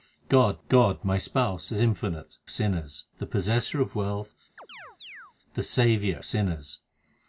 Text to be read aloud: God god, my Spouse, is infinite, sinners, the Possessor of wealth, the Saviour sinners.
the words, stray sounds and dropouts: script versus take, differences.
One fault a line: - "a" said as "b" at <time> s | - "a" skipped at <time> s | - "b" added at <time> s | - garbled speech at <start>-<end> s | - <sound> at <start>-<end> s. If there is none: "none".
- chirp at 4.6-5.3 s